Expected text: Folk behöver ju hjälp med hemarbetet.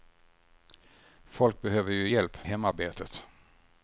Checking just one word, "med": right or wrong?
wrong